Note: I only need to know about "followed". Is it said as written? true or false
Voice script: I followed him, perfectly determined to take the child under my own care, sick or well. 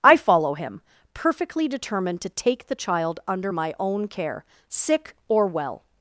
false